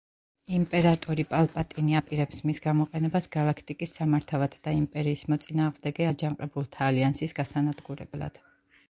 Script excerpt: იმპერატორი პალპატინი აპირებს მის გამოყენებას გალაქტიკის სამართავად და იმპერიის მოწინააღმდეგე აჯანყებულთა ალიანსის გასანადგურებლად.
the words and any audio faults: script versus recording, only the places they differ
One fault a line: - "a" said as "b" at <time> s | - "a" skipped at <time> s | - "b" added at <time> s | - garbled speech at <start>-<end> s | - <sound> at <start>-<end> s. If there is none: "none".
none